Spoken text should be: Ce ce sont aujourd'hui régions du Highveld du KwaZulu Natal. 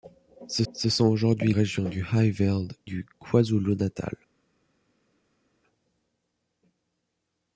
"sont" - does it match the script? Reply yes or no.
yes